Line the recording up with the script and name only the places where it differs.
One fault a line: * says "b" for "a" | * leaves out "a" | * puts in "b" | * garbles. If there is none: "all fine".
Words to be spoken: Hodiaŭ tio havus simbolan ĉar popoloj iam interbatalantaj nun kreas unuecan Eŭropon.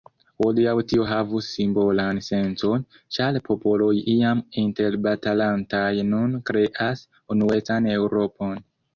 * puts in "sencon"